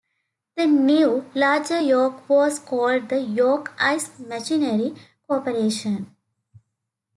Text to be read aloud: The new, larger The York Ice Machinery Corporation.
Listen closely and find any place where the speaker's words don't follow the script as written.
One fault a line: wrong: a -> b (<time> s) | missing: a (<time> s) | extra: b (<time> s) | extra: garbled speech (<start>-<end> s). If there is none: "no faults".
extra: York was called (1.8 s)